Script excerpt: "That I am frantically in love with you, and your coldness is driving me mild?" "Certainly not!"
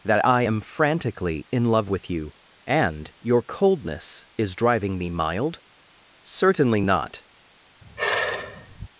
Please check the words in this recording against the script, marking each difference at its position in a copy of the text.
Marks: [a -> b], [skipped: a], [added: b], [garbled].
"That I am frantically in love with you, and your coldness is driving me mild?" "Certainly not!"